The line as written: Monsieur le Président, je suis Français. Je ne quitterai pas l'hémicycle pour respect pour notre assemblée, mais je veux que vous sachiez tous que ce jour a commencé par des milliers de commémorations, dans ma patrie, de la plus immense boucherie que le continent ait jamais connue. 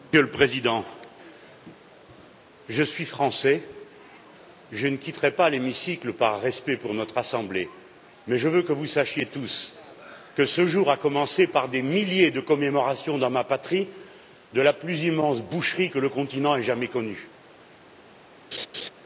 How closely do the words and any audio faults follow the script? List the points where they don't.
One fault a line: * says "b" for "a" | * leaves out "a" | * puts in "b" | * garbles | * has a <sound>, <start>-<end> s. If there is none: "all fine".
* says "par" for "pour"
* has a laugh, 18.5-18.9 s